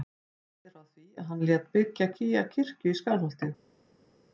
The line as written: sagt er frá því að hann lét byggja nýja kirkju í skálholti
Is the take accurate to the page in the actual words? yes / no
yes